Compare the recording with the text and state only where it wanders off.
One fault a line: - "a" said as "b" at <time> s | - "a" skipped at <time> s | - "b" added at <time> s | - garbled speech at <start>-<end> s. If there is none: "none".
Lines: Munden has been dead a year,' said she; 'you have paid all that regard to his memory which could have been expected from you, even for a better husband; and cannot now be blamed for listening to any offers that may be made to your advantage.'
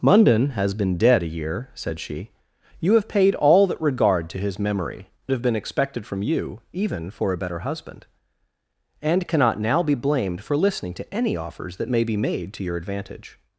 - "which could" skipped at 5.1 s